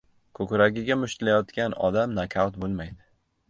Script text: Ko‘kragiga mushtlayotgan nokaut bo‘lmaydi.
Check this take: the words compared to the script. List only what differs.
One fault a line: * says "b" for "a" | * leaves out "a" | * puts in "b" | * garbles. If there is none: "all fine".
* puts in "odam"